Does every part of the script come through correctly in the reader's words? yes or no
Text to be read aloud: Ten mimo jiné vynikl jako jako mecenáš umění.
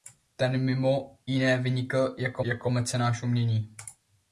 yes